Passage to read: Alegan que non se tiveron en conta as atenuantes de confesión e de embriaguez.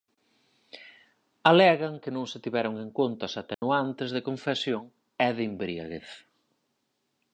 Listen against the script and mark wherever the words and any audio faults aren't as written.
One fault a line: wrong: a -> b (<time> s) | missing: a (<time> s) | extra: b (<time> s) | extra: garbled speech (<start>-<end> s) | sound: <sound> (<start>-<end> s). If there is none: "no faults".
sound: dropout (3.5-3.6 s)